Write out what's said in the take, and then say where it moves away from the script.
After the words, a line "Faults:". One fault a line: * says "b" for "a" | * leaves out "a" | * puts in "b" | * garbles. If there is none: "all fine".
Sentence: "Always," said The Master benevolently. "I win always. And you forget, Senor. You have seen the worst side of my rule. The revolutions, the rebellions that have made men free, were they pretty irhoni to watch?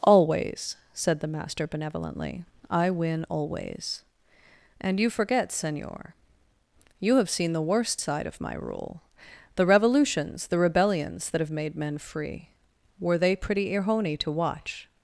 "Always," said The Master benevolently. "I win always. And you forget, Senor. You have seen the worst side of my rule. The revolutions, the rebellions that have made men free, were they pretty irhoni to watch?
Faults:
all fine